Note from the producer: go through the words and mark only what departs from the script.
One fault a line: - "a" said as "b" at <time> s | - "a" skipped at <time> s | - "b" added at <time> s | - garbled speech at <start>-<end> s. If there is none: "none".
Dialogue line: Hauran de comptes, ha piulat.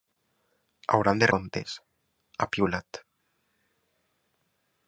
none